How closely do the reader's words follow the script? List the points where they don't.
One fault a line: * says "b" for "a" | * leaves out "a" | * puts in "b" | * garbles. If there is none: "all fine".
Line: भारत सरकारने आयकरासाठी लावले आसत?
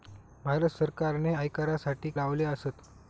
all fine